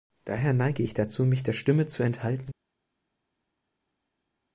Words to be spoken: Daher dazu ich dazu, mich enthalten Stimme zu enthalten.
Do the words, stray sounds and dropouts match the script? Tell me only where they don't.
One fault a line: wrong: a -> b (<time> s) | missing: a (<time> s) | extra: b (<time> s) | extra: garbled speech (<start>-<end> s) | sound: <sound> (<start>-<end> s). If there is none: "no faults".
wrong: dazu -> neige (0.5 s)
wrong: enthalten -> der (1.4 s)